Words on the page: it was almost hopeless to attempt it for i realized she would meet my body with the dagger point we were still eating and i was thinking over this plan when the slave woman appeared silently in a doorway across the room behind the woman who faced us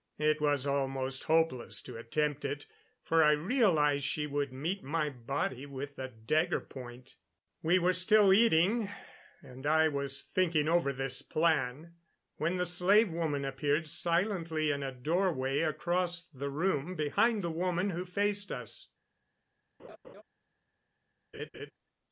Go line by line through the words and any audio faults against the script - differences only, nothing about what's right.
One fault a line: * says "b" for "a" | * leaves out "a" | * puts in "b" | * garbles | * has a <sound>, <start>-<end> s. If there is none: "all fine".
* has a laugh, 19.8-20.2 s
* has a laugh, 21.3-21.7 s